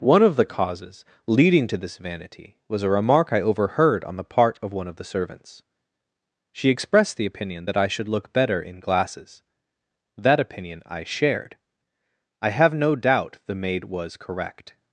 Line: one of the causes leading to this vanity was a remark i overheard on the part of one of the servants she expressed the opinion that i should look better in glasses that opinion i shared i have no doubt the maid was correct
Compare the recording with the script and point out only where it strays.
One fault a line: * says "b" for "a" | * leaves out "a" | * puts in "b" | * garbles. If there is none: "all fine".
all fine